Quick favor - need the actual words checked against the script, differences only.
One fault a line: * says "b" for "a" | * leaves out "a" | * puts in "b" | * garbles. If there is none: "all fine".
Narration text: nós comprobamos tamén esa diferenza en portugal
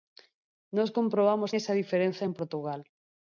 * leaves out "tamén"